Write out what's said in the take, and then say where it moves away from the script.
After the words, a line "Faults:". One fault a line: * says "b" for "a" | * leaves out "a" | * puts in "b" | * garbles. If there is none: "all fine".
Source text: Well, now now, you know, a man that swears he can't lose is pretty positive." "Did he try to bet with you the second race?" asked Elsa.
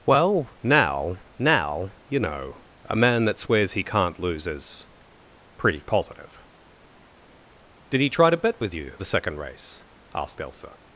Well, now now, you know, a man that swears he can't lose is pretty positive." "Did he try to bet with you the second race?" asked Elsa.
Faults:
all fine